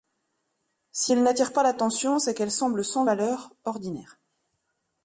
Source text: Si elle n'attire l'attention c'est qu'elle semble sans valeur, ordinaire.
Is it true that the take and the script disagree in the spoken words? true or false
true